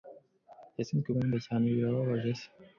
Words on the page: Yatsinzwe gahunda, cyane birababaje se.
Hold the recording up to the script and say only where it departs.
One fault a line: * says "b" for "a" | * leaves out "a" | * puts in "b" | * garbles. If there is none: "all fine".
all fine